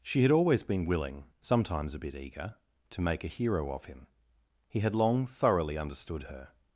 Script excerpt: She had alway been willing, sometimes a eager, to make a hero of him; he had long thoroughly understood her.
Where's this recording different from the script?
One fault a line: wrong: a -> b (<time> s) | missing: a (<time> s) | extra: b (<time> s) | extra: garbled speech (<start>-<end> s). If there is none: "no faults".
wrong: alway -> always (0.3 s)
extra: bit (2.0 s)